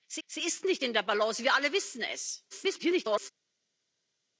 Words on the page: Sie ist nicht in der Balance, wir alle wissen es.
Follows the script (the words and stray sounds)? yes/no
no